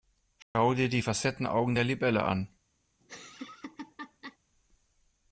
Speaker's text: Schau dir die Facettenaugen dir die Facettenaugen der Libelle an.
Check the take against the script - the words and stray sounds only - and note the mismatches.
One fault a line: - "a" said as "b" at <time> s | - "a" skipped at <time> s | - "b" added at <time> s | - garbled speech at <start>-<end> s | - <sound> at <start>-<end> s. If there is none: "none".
- dropout at 0.4-0.5 s
- "dir die Facettenaugen" skipped at 1.8 s
- laugh at 3.0-4.4 s